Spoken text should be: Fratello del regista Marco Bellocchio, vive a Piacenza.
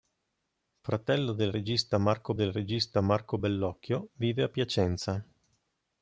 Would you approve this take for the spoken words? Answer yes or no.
no